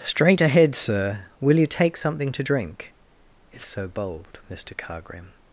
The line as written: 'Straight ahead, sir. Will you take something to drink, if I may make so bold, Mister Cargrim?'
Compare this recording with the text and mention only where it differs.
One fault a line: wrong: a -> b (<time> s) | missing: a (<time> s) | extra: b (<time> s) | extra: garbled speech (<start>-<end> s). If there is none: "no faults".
missing: I may make (3.7 s)